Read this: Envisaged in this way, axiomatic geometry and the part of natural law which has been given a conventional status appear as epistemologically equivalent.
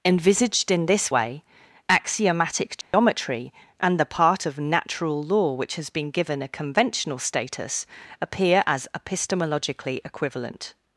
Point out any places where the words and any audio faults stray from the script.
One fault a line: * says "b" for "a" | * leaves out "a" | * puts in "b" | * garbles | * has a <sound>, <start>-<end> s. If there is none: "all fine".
* has a dropout, 2.8-2.9 s